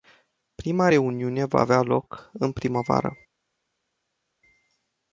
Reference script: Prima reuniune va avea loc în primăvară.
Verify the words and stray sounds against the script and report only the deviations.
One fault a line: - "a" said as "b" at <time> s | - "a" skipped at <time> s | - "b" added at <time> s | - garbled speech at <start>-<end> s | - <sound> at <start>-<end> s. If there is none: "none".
none